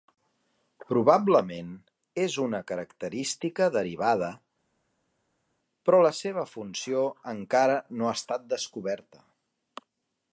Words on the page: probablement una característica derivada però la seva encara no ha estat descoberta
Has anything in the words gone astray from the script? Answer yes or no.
yes